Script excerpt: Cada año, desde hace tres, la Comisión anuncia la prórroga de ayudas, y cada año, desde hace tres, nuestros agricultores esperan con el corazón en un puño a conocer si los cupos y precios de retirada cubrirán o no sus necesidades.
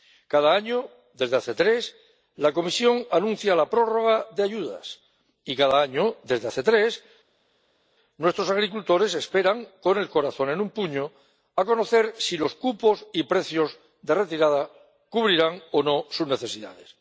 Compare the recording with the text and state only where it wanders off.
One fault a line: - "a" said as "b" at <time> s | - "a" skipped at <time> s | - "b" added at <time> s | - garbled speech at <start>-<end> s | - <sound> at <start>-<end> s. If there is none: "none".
none